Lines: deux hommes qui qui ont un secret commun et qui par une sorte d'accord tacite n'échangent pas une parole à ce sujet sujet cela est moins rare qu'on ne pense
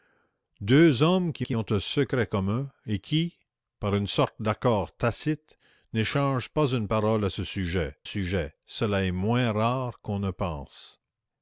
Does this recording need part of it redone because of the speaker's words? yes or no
no